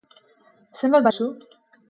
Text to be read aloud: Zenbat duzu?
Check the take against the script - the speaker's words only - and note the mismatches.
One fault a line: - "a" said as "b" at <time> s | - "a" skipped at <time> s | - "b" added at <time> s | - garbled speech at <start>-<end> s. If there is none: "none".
none